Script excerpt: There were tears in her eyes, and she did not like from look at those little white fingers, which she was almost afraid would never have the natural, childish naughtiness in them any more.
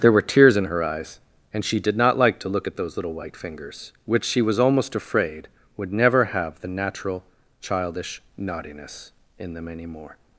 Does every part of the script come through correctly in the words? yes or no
no